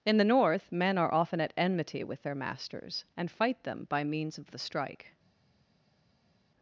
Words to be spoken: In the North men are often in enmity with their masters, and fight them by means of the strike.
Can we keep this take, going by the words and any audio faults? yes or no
no